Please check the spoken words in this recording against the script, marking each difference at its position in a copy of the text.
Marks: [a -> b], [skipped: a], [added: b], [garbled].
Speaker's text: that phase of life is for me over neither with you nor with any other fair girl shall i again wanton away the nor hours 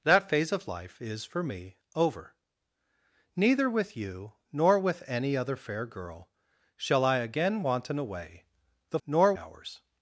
that phase of life is for me over neither with you nor with any other fair girl shall i again wanton away the nor hours